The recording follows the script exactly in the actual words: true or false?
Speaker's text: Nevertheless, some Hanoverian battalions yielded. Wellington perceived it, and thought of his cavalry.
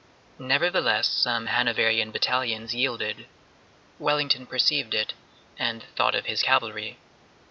true